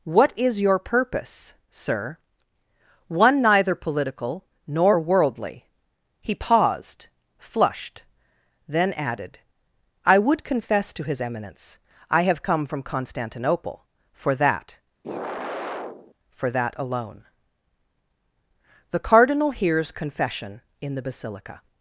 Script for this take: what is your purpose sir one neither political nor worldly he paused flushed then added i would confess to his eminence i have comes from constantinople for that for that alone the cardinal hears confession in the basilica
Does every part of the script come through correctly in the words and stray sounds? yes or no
no